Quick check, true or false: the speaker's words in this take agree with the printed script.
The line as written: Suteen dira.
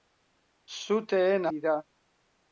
true